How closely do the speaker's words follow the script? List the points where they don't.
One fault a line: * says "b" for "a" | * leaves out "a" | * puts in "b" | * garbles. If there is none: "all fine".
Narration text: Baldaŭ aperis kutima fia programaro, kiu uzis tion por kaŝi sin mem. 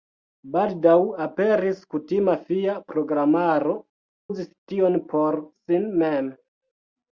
* leaves out "kiu"
* leaves out "kaŝi"